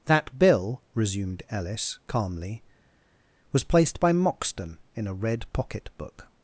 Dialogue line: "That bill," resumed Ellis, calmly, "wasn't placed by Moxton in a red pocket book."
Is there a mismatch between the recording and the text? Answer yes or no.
yes